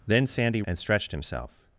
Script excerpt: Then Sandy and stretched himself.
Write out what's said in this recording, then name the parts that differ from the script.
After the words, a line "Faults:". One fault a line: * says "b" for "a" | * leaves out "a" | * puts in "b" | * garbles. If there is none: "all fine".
Then Sandy and stretched himself.
Faults:
all fine